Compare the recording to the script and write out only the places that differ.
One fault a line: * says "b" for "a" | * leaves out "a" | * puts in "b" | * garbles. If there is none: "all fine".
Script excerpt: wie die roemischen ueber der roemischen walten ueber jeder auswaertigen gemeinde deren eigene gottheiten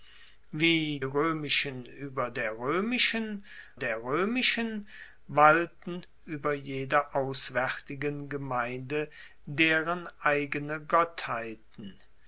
* leaves out "die"
* puts in "der roemischen"